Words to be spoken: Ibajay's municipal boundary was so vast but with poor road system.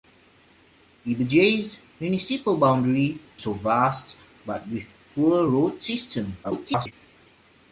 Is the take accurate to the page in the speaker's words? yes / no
no